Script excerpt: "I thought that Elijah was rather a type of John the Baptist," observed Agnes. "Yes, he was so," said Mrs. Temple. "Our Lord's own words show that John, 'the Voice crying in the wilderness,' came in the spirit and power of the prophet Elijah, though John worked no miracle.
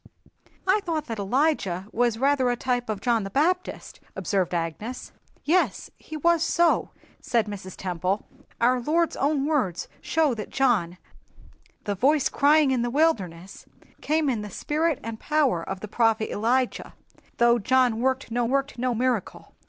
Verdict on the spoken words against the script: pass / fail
fail